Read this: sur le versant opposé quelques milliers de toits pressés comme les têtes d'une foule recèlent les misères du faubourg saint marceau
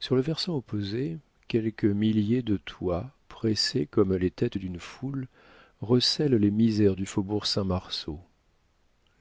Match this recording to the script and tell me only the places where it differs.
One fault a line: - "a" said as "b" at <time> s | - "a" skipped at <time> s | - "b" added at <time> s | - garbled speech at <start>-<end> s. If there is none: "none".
none